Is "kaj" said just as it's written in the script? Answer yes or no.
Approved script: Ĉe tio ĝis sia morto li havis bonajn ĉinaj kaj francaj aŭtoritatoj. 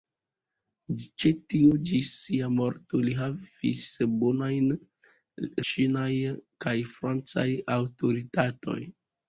yes